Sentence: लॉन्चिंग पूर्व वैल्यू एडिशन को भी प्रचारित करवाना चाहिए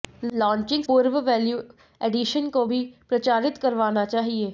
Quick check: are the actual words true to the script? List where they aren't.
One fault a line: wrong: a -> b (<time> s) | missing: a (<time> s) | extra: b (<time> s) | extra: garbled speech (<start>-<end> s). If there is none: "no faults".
no faults